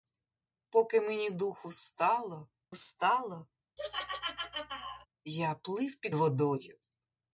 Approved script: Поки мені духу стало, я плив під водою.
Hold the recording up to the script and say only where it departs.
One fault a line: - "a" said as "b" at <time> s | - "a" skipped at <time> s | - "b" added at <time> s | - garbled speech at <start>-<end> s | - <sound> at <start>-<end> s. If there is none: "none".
- "стало" added at 2.7 s
- laugh at 3.8-5.1 s